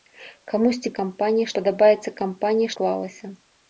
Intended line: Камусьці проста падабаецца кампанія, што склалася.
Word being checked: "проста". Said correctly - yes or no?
no